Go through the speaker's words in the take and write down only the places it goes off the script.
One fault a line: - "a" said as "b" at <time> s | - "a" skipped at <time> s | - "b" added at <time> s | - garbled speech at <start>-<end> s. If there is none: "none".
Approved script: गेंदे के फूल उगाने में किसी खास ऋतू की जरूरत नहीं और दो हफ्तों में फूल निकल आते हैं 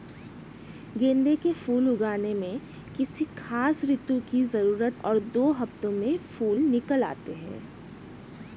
- "नहीं" skipped at 5.0 s